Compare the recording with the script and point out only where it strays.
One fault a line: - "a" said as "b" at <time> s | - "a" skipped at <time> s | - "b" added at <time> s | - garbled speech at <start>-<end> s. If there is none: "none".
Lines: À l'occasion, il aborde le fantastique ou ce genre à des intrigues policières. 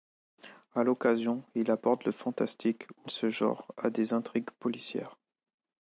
none